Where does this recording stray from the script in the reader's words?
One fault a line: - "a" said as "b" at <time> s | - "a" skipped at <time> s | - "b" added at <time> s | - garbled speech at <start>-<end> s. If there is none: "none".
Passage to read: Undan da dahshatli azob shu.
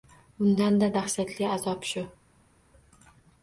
none